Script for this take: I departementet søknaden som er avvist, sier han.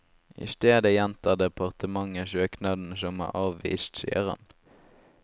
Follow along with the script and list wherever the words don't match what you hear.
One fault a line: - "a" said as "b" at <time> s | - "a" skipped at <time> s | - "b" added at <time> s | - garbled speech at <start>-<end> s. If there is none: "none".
- "stedet gjentar" added at 0.5 s